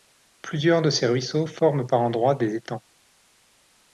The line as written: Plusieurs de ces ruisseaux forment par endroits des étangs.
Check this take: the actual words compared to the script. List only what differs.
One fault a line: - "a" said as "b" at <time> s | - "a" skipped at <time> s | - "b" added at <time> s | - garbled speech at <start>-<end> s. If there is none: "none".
none